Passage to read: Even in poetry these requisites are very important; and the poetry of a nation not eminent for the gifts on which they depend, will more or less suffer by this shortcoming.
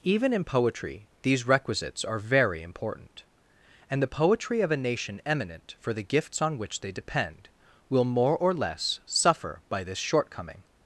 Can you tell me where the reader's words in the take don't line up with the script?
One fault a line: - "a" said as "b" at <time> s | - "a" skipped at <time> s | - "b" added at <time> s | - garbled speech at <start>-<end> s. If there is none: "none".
- "not" skipped at 5.2 s